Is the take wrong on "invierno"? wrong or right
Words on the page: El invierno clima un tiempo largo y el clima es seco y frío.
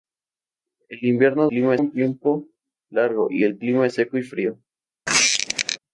right